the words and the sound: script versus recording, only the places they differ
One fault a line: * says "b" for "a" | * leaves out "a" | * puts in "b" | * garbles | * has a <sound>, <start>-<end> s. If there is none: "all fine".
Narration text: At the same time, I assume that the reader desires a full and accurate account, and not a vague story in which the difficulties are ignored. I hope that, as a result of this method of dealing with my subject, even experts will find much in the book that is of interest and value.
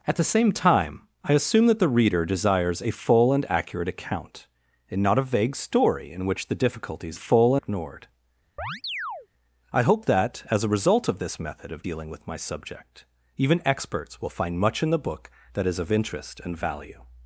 * says "full" for "are"
* has a chirp, 8.6-9.3 s